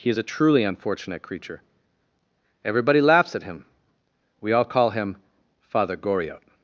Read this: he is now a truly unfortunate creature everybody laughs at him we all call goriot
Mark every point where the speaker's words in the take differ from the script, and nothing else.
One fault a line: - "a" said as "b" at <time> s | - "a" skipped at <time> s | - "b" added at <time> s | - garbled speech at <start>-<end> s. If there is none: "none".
- "now" skipped at 0.2 s
- "him father" added at 4.9 s